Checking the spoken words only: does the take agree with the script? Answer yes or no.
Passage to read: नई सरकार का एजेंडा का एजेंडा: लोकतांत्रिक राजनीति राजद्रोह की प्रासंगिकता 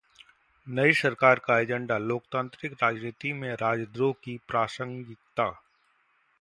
no